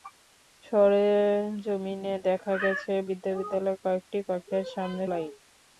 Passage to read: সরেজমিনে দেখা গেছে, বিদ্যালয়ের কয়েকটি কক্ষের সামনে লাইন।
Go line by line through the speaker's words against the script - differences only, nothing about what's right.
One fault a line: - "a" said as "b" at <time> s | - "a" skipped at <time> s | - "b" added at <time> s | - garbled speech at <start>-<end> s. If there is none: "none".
none